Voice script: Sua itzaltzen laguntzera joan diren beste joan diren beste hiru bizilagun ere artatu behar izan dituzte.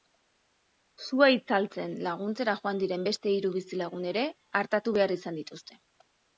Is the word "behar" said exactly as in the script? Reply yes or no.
yes